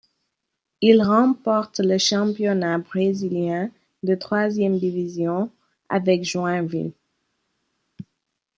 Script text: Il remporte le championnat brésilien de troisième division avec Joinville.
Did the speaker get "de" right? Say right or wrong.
right